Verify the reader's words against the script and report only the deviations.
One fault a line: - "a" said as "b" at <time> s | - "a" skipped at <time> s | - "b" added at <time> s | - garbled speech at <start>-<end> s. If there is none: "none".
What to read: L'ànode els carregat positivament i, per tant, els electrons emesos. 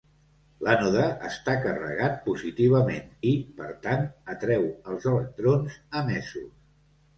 - "els" said as "està" at 1.3 s
- "atreu" added at 4.4 s